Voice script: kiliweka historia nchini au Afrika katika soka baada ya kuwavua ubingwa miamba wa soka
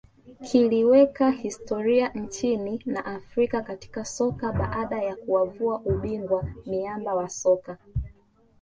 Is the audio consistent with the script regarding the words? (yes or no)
no